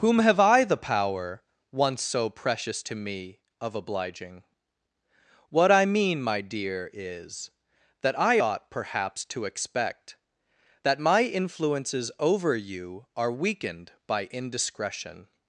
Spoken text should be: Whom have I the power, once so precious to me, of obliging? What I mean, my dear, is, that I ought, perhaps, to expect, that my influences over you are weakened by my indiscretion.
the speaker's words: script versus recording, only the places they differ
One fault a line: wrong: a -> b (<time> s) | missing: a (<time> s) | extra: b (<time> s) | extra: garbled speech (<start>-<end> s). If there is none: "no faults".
missing: my (14.2 s)